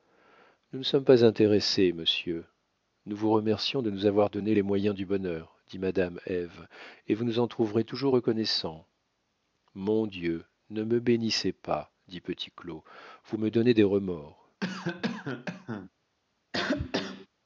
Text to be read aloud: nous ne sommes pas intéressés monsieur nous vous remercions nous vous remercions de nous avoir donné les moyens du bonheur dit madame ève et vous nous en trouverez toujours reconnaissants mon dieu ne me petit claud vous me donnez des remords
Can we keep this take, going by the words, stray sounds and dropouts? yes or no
no